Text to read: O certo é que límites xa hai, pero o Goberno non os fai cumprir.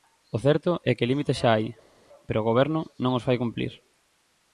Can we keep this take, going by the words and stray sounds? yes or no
yes